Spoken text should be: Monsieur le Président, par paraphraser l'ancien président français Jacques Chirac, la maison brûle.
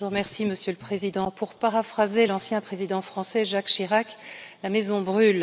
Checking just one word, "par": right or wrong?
wrong